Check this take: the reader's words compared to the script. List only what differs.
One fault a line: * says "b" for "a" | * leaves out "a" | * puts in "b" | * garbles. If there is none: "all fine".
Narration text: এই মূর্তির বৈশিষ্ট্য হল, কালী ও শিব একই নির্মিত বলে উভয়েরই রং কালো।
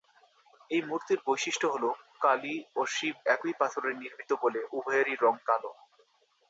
* puts in "পাথরে"